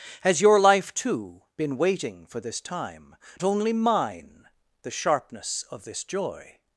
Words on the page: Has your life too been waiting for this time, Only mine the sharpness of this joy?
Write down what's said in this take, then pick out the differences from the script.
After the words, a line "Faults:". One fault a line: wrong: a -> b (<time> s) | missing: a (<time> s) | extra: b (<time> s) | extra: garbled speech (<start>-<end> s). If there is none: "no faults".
Has your life too been waiting for this time, Only mine the sharpness of this joy?
Faults:
no faults